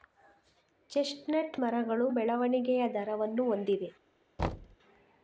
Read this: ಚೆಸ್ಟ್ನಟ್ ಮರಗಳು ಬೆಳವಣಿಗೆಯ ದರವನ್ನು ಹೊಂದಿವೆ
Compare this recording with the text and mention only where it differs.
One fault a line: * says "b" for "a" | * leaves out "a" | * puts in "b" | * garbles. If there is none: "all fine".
all fine